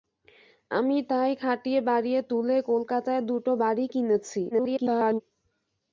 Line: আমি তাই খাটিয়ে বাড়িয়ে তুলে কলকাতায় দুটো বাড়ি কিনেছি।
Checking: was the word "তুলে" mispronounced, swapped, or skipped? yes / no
no